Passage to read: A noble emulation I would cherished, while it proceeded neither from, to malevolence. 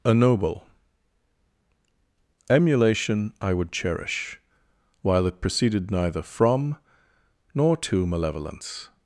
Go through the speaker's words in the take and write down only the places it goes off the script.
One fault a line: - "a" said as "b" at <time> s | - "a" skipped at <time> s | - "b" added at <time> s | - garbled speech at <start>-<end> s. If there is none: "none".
- "cherished" said as "cherish" at 3.7 s
- "nor" added at 7.5 s